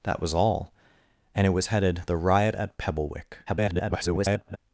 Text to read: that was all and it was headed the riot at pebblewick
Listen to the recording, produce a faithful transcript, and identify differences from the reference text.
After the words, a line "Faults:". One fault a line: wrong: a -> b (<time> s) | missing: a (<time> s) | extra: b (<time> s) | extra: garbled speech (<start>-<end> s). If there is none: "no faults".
that was all and it was headed the riot at pebblewick [garbled]
Faults:
extra: garbled speech (3.5-4.6 s)